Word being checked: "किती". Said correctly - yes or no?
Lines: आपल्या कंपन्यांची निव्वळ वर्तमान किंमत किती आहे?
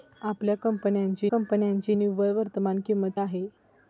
no